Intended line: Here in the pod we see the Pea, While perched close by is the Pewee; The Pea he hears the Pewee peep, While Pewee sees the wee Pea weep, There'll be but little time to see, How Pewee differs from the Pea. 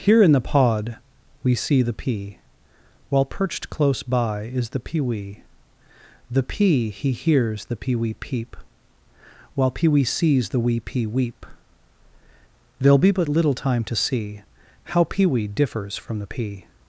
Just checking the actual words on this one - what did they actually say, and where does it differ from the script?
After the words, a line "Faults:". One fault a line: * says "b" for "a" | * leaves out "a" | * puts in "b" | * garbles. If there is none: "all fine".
Here in the pod we see the Pea, While perched close by is the Pewee; The Pea he hears the Pewee peep, While Pewee sees the wee Pea weep, There'll be but little time to see, How Pewee differs from the Pea.
Faults:
all fine